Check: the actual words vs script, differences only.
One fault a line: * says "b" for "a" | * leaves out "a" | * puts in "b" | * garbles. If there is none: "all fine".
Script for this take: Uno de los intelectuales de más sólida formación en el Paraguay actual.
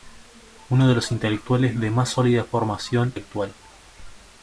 * leaves out "en el Paraguay"